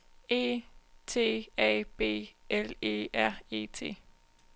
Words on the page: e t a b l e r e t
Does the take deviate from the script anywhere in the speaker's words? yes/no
no